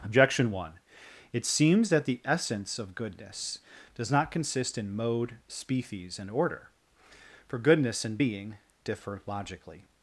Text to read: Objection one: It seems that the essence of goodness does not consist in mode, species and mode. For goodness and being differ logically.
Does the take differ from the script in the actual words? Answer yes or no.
yes